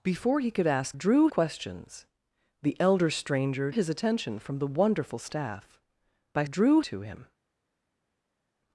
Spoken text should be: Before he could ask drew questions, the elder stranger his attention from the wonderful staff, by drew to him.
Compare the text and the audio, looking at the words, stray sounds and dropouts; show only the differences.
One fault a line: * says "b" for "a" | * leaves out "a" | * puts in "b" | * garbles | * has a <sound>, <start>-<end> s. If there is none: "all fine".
all fine